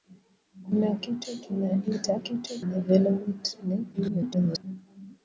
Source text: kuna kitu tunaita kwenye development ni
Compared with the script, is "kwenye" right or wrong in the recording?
wrong